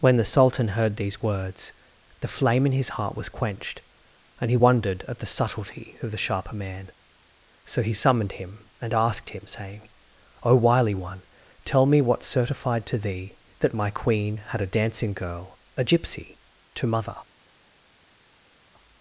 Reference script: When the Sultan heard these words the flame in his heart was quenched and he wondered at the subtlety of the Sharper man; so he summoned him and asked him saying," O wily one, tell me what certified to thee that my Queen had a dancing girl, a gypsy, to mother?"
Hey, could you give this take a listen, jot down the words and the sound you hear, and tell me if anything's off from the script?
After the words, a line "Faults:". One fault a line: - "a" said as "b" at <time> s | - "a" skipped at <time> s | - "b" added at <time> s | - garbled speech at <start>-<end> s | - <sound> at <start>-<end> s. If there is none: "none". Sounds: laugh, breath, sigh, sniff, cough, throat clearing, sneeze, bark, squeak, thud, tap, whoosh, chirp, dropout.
When the Sultan heard these words the flame in his heart was quenched and he wondered at the subtlety of the Sharper man; so he summoned him and asked him saying," O wily one, tell me what certified to thee that my Queen had a dancing girl, a gypsy, to mother?"
Faults:
none